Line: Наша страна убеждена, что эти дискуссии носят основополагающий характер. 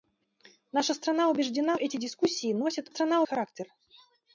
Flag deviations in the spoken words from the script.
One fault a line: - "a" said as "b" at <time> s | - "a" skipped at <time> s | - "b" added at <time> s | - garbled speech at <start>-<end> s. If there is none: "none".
- "что" skipped at 1.8 s
- "основополагающий" said as "страна" at 2.9 s